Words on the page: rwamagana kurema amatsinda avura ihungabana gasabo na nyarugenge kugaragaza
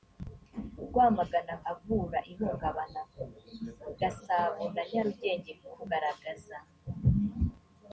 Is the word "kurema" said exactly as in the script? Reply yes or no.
no